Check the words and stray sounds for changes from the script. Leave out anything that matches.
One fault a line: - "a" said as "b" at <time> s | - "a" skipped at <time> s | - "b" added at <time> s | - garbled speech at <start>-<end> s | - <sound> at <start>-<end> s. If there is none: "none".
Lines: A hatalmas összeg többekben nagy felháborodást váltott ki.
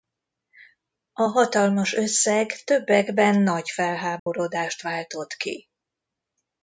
- dropout at 4.2-4.3 s